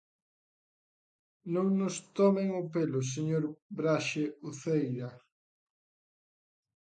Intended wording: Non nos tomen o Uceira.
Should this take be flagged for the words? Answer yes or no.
yes